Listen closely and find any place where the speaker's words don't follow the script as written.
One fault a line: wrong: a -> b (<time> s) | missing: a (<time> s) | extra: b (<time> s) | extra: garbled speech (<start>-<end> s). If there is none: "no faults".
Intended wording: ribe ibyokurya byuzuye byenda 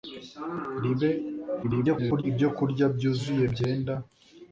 extra: garbled speech (1.6-2.2 s)